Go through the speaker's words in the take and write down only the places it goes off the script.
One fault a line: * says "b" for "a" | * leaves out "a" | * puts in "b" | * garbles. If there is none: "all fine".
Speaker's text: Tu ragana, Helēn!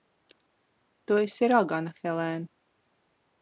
* puts in "esi"